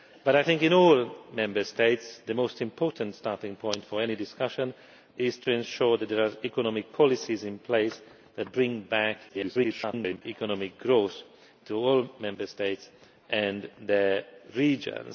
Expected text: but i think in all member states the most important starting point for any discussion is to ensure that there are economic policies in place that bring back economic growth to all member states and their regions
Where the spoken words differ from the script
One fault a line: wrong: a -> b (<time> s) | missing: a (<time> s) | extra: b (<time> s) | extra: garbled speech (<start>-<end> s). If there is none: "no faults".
extra: garbled speech (9.3-10.2 s)